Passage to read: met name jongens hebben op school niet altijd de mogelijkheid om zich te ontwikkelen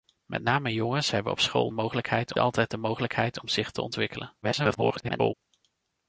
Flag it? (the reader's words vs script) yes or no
yes